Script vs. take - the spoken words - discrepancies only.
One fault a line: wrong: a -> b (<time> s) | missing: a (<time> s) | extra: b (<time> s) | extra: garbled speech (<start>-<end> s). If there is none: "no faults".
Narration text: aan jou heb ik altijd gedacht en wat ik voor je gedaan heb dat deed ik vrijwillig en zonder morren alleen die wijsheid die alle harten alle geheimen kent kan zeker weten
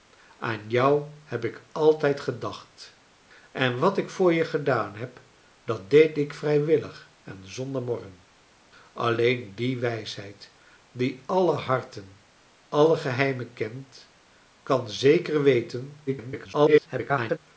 extra: garbled speech (16.1-17.4 s)